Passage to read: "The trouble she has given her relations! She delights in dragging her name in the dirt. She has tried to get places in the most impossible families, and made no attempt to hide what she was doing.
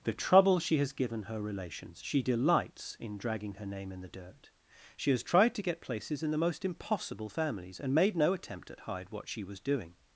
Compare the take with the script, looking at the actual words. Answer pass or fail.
fail